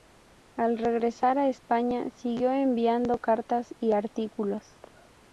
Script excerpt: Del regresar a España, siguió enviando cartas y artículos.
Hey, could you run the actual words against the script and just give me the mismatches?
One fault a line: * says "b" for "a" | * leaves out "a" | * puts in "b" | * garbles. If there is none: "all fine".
* says "Al" for "Del"